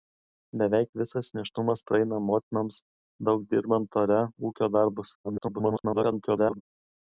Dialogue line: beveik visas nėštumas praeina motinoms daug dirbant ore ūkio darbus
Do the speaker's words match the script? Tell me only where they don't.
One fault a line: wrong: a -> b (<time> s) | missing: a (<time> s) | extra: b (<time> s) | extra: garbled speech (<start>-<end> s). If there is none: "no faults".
extra: garbled speech (5.2-6.6 s)